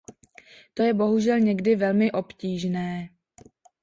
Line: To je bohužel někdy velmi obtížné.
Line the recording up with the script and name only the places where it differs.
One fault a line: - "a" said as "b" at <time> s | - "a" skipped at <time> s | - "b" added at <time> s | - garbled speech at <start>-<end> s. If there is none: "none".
none